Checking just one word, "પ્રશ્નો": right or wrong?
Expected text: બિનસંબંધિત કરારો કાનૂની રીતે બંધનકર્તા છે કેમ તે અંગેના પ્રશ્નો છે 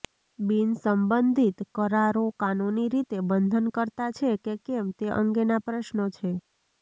right